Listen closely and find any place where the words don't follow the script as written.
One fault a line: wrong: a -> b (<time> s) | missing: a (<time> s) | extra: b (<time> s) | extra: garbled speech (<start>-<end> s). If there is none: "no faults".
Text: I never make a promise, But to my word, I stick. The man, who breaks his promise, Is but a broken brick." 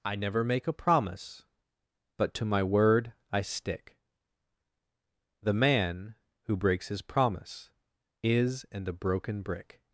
wrong: but -> and (8.7 s)